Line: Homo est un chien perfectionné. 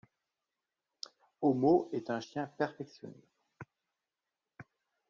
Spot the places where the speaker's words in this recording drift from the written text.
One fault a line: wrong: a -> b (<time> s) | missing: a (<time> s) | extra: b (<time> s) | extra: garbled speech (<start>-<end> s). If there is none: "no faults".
no faults